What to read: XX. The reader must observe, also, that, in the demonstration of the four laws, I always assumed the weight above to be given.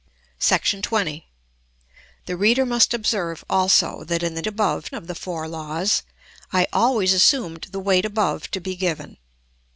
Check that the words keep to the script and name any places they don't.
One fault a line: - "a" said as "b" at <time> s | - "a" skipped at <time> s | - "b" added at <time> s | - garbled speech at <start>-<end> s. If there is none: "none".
- "demonstration" said as "above" at 4.5 s